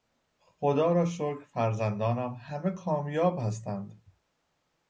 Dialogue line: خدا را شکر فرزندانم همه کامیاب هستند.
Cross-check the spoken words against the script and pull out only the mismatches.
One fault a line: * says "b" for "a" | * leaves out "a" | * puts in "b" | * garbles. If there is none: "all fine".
all fine